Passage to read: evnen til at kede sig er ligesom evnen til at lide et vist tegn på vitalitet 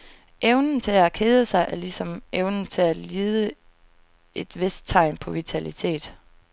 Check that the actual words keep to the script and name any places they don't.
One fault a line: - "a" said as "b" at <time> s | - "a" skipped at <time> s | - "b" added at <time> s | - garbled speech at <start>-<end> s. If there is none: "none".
none